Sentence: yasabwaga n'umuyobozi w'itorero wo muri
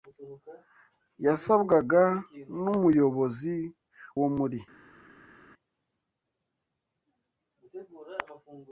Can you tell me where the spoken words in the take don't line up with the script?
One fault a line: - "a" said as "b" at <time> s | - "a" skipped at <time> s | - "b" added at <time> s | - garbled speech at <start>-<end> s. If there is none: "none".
- "w'itorero" skipped at 3.5 s